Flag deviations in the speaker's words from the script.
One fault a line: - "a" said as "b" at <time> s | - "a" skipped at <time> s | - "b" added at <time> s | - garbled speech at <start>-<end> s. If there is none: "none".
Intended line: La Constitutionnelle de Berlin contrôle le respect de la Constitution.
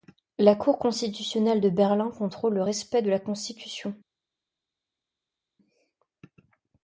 - "Cour" added at 0.6 s